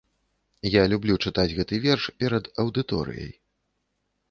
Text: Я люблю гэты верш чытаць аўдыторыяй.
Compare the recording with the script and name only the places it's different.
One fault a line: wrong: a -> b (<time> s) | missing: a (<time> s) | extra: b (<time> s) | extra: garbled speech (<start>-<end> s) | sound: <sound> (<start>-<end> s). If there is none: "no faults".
extra: чытаць (1.2 s)
wrong: чытаць -> перад (2.2 s)